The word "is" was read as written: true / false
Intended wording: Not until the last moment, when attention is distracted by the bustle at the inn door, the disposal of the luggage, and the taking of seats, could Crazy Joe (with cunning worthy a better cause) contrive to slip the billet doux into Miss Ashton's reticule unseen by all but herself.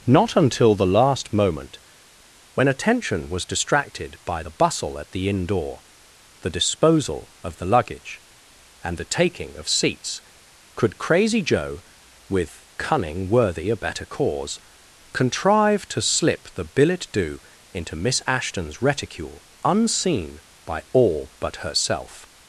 false